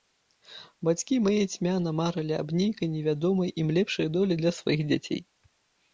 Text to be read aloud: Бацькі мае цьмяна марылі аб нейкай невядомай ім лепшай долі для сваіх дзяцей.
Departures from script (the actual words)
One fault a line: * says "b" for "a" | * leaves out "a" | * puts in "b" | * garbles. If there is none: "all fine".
all fine